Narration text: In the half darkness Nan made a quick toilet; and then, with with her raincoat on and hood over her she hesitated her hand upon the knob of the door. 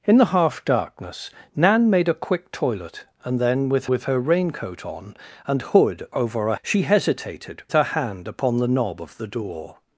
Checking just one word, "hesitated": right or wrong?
right